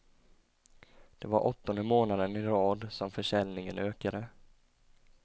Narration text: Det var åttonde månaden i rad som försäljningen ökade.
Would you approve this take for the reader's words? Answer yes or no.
yes